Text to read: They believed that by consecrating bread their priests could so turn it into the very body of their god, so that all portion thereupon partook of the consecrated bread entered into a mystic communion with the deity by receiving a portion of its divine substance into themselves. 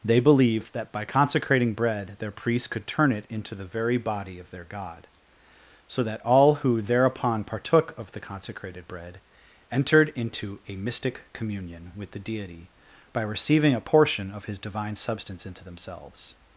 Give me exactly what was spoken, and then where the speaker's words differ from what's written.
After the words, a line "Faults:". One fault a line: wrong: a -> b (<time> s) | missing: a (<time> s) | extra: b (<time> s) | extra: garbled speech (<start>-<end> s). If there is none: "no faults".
They believed that by consecrating bread their priests could turn it into the very body of their god, so that all who thereupon partook of the consecrated bread entered into a mystic communion with the deity by receiving a portion of his divine substance into themselves.
Faults:
missing: so (2.9 s)
wrong: portion -> who (6.5 s)
wrong: its -> his (14.4 s)